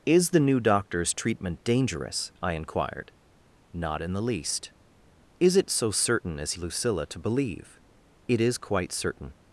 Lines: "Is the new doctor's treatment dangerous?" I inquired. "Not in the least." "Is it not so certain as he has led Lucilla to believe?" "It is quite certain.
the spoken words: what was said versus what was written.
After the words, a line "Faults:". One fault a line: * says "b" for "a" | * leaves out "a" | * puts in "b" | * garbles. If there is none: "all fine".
"Is the new doctor's treatment dangerous?" I inquired. "Not in the least." "Is it so certain as Lucilla to believe?" "It is quite certain.
Faults:
* leaves out "not"
* leaves out "he has led"